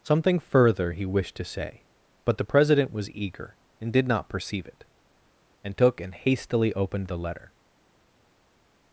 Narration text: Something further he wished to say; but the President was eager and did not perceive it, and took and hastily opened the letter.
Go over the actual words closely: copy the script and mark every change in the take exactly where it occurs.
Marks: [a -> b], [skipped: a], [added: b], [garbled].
Something further he wished to say; but the President was eager and did not perceive it, and took and hastily opened the letter.